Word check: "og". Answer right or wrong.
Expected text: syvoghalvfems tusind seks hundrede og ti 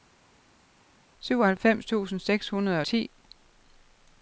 wrong